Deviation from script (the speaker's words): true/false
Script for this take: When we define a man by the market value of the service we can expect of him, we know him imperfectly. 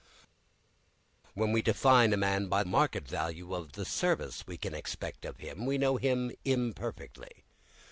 true